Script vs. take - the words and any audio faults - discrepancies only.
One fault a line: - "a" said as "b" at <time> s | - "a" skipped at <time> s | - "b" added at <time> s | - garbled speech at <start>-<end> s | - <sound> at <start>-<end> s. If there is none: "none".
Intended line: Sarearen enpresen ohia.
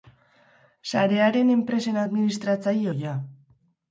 - "administratzaile" added at 2.0 s